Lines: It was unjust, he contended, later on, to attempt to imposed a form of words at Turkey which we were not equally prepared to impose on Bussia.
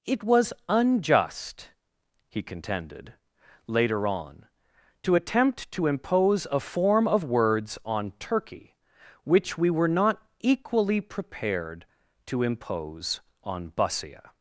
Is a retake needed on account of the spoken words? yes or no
yes